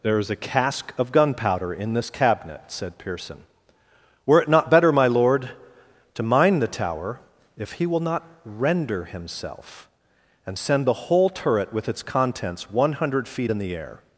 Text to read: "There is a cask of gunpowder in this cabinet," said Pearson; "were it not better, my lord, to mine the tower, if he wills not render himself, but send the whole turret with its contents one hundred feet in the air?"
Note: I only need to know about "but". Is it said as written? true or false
false